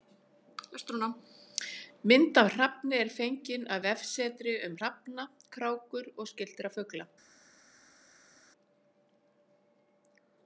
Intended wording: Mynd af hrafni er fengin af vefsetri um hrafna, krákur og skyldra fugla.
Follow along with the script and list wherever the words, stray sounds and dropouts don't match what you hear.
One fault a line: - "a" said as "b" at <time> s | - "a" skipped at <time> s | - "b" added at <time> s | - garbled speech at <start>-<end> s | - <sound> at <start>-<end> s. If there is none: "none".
none